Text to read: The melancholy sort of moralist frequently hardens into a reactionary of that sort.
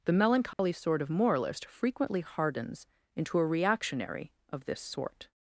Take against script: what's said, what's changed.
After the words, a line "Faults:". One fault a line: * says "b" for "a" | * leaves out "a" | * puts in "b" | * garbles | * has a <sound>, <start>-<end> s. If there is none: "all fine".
The melancholy sort of moralist frequently hardens into a reactionary of this sort.
Faults:
* has a dropout, 0.5-0.6 s
* says "this" for "that"